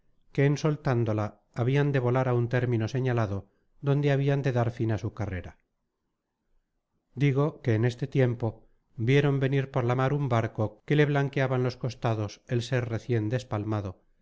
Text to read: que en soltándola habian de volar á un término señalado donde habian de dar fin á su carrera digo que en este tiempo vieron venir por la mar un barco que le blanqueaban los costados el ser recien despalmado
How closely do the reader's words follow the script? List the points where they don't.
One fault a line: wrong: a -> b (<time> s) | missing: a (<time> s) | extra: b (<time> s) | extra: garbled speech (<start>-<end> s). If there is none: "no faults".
no faults